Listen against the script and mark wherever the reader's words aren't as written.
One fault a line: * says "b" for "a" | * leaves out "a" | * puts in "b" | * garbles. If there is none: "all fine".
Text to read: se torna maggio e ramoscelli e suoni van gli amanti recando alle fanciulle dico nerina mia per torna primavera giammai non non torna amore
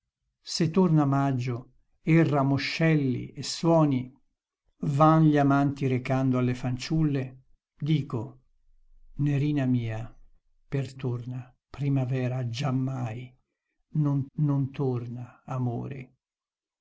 all fine